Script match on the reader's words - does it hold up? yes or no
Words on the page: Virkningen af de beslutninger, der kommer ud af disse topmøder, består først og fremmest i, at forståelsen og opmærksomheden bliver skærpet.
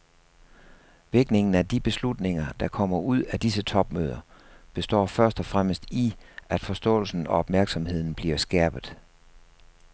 yes